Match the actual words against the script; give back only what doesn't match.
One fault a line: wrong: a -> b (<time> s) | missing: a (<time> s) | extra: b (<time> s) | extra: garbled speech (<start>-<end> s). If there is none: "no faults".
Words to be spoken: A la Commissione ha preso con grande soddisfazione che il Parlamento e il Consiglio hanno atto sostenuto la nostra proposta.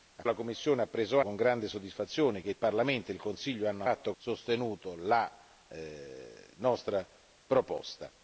no faults